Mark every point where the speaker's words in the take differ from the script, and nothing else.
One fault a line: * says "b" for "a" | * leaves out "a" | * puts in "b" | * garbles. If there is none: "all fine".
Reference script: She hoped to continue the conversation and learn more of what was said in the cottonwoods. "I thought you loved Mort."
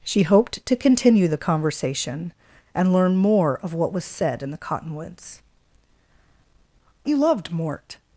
* leaves out "I thought"